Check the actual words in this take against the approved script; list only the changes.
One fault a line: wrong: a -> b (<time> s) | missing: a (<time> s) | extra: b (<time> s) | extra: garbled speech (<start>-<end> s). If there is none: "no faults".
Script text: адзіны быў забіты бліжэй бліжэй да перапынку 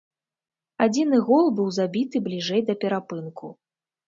extra: гол (1.3 s)
missing: бліжэй (2.6 s)